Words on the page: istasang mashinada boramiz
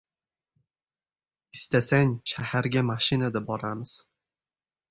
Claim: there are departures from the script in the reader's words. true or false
true